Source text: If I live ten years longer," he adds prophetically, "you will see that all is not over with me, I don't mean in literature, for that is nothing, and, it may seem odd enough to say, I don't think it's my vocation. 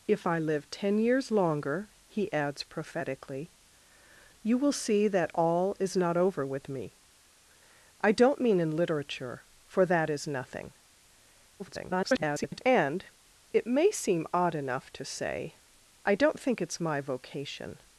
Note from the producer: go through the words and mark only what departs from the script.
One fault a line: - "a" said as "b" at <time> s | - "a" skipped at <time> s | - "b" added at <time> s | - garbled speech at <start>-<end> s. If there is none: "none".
- garbled speech at 11.6-12.6 s